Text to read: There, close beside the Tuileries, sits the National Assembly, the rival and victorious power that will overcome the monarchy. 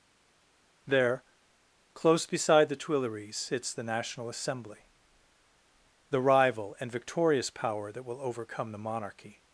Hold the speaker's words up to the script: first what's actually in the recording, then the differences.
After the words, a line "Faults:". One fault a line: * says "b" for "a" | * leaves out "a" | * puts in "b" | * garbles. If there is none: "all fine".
There, close beside the Tuileries, sits the National Assembly, the rival and victorious power that will overcome the monarchy.
Faults:
all fine